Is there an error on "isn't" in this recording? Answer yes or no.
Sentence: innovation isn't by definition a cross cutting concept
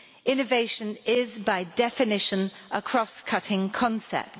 yes